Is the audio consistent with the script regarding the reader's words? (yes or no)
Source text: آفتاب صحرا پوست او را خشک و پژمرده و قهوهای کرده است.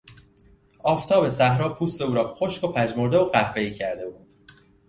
no